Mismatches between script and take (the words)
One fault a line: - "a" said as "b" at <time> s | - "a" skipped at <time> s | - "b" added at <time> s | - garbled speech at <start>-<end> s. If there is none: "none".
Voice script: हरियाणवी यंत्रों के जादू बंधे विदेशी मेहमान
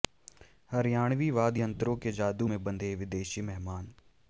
- "वाद्य" added at 1.3 s
- "में" added at 2.4 s